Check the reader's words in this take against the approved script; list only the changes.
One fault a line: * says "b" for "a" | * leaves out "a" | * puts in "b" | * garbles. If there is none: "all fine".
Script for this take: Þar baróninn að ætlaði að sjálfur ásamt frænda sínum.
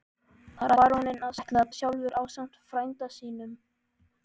all fine